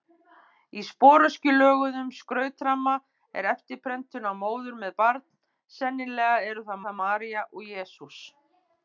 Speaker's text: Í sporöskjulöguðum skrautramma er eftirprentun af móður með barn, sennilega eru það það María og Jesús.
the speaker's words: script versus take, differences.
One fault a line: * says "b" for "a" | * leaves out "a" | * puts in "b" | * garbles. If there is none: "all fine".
all fine